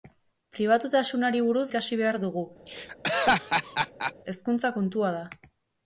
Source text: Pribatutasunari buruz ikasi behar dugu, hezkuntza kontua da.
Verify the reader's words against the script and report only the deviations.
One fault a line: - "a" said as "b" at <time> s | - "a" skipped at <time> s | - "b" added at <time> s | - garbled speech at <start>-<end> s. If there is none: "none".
none